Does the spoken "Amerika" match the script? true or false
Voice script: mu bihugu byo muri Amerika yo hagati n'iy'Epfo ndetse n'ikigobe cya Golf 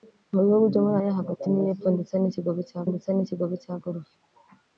false